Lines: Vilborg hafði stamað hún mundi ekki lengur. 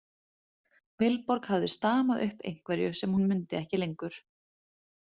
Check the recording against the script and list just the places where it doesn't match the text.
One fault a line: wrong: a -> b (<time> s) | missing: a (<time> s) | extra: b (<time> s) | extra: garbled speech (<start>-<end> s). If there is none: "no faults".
extra: upp einhverju sem (2.3 s)